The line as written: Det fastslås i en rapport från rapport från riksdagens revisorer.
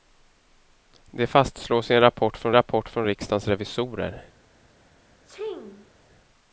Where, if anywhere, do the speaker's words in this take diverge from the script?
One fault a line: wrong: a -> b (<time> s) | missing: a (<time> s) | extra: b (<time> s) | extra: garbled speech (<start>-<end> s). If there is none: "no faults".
no faults